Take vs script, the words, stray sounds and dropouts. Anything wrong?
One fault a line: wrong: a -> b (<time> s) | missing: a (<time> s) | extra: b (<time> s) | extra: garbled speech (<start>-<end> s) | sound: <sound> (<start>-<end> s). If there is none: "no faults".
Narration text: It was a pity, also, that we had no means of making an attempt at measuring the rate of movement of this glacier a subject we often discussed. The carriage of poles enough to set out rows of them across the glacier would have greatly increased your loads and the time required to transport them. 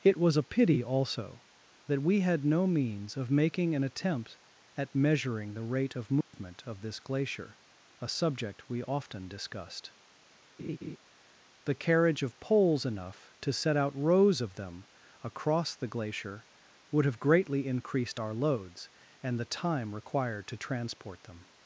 sound: dropout (6.2-6.3 s)
sound: laugh (10.6-11.0 s)
wrong: your -> our (18.2 s)